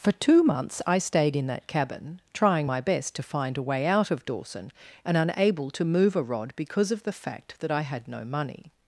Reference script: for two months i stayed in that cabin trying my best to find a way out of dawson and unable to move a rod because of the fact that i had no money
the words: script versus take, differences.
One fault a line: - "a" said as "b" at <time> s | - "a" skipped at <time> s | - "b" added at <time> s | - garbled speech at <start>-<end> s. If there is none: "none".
none